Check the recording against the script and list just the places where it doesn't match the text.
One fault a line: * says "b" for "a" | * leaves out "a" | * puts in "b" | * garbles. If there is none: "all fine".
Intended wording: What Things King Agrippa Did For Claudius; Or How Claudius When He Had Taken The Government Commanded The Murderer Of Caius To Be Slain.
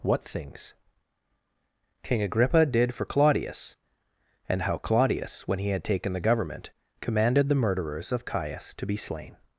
* says "And" for "Or"
* says "Murderers" for "Murderer"